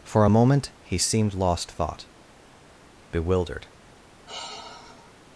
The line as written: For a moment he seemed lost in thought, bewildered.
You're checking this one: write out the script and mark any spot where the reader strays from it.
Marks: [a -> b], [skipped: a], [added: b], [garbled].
For a moment he seemed lost [skipped: in] thought, bewildered.